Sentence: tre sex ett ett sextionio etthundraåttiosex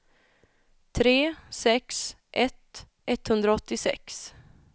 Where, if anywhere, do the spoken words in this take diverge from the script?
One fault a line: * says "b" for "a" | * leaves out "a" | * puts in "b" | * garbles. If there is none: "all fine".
* leaves out "ett sextionio"